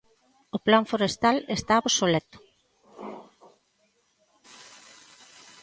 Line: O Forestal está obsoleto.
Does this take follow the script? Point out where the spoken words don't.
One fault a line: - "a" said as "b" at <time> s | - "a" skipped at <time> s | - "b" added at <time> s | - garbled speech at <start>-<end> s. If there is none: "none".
- "Plan" added at 0.7 s